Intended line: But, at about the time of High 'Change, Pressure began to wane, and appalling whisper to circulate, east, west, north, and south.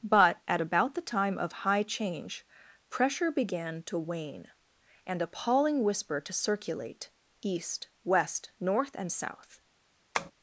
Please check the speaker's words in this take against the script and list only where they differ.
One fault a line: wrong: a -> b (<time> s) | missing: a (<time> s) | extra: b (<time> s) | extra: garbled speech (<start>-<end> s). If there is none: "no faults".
no faults